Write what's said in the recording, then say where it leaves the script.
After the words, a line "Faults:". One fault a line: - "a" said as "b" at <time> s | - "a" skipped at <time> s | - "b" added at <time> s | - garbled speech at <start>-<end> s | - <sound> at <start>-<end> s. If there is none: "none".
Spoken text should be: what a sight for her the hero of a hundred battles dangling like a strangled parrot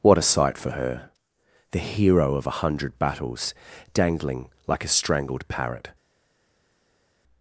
what a sight for her the hero of a hundred battles dangling like a strangled parrot
Faults:
none